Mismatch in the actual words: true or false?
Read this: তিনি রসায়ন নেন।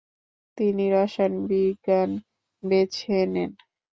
true